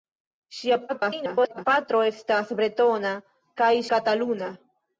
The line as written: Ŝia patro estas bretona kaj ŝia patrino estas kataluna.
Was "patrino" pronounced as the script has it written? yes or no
no